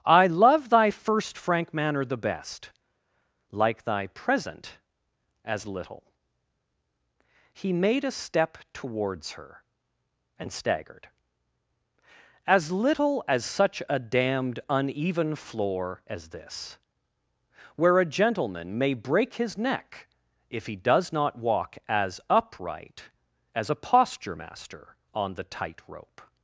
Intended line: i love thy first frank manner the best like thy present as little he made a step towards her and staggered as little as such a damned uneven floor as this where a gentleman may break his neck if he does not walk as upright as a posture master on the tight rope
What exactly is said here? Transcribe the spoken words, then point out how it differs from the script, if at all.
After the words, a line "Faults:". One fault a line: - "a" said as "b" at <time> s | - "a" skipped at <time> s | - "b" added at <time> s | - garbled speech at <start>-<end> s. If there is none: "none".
i love thy first frank manner the best like thy present as little he made a step towards her and staggered as little as such a damned uneven floor as this where a gentleman may break his neck if he does not walk as upright as a posture master on the tight rope
Faults:
none